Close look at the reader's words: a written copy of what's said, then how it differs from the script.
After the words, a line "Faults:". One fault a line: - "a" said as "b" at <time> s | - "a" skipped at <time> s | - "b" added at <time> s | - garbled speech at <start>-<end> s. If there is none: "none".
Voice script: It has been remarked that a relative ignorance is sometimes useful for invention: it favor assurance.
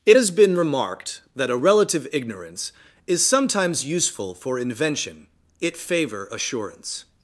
It has been remarked that a relative ignorance is sometimes useful for invention: it favor assurance.
Faults:
none